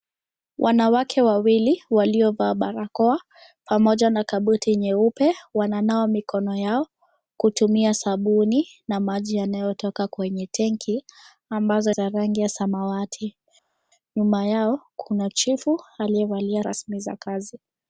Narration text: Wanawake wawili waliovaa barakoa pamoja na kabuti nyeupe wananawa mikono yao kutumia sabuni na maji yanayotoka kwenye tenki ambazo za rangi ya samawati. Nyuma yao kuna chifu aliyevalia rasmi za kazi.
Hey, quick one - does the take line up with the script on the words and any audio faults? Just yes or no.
yes